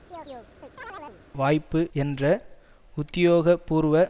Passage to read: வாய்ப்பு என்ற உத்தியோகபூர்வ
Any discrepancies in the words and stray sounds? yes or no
yes